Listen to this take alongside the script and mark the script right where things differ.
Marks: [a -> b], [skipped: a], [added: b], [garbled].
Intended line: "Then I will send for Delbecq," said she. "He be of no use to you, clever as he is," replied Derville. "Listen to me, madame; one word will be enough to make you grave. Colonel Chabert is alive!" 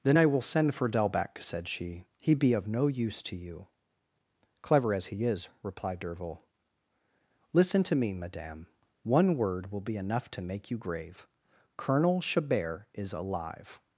"Then I will send for Delbecq," said she. "He be of no use to you, clever as he is," replied Derville. "Listen to me, madame; one word will be enough to make you grave. Colonel Chabert is alive!"